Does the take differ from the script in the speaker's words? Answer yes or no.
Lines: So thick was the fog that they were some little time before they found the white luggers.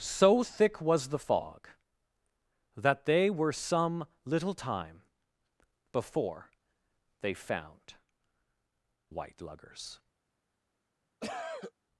yes